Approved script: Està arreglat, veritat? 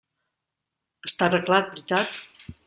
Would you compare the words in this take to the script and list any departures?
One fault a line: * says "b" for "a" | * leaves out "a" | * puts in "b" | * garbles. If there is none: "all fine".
all fine